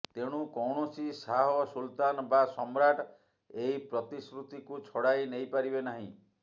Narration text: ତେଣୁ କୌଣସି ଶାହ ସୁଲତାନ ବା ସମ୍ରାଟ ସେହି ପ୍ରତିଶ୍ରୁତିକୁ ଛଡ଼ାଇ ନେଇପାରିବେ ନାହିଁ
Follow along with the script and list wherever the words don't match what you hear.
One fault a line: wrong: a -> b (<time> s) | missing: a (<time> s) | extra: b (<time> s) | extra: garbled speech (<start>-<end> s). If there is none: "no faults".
wrong: ସେହି -> ଏହି (3.6 s)